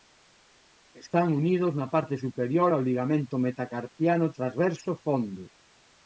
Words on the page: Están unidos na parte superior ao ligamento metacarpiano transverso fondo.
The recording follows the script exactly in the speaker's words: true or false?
true